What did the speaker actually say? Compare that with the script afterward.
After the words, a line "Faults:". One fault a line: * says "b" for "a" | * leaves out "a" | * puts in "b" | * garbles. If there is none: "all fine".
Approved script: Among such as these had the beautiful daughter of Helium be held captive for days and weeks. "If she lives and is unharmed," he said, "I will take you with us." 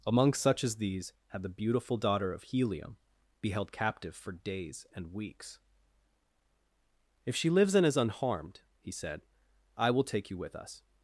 Among such as these had the beautiful daughter of Helium be held captive for days and weeks. "If she lives and is unharmed," he said, "I will take you with us."
Faults:
all fine